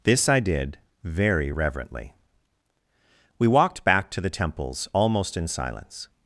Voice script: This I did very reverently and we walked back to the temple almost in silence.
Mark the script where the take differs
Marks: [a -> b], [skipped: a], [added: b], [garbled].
This I did very reverently [skipped: and] we walked back to the [temple -> temples] almost in silence.